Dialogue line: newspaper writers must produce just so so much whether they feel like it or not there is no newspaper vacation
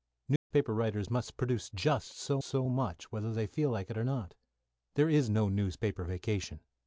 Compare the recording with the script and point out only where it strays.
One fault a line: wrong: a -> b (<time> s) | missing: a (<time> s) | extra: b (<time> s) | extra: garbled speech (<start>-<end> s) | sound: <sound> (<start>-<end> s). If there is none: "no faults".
sound: dropout (0.4-0.5 s)